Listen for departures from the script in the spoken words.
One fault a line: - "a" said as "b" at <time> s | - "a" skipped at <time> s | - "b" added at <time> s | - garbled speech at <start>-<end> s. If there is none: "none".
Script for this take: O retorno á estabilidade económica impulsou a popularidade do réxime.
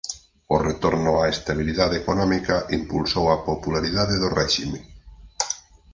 none